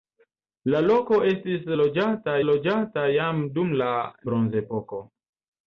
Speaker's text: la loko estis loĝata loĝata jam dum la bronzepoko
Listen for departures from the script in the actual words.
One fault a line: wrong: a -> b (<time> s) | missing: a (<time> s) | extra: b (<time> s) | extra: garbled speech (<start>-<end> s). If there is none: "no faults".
no faults